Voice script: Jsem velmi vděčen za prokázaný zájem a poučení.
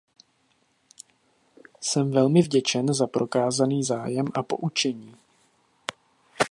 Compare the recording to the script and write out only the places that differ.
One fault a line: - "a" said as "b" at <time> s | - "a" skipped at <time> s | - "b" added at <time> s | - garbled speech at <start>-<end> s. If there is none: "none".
none